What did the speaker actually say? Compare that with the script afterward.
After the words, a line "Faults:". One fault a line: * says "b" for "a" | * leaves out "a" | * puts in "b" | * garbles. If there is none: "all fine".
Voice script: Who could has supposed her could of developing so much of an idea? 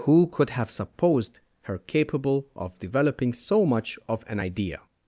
Who could have supposed her capable of developing so much of an idea?
Faults:
* says "have" for "has"
* says "capable" for "could"